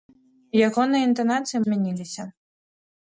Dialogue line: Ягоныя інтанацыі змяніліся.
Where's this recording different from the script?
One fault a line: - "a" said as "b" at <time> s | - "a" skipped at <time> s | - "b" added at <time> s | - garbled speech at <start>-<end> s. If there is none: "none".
none